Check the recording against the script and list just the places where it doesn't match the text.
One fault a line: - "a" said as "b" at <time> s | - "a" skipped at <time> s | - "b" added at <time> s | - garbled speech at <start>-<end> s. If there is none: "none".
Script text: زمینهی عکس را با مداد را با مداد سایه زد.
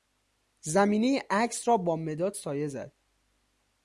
- "را با مداد" skipped at 2.4 s